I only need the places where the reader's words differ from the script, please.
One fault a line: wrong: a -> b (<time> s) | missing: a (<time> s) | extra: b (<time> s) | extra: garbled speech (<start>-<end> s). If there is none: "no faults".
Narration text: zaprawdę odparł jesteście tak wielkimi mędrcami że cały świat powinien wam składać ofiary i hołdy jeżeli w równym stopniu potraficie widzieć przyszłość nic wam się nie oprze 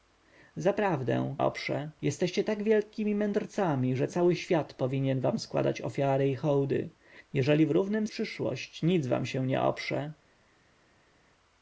wrong: odparł -> oprze (1.4 s)
missing: stopniu potraficie widzieć (8.1 s)